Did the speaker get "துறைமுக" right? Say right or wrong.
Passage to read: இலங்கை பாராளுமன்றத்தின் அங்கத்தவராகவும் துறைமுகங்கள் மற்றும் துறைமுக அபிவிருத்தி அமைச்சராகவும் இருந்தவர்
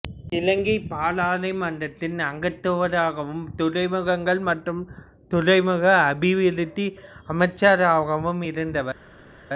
right